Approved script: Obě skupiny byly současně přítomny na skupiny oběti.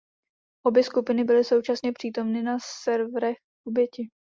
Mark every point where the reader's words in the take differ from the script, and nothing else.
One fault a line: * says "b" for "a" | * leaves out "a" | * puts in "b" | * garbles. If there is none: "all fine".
* says "serverech" for "skupiny"